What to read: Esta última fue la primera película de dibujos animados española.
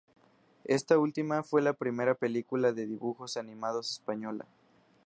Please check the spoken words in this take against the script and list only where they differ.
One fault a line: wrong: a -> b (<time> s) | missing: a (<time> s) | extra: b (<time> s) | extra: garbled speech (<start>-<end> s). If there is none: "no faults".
no faults